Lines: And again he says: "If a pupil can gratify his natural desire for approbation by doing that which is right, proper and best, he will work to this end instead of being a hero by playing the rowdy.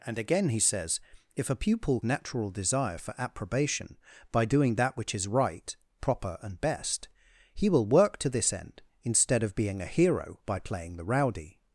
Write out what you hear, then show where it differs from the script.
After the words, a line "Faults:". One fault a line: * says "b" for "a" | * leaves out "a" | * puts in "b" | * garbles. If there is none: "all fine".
And again he says: "If a pupil natural desire for approbation by doing that which is right, proper and best, he will work to this end instead of being a hero by playing the rowdy.
Faults:
* leaves out "can gratify his"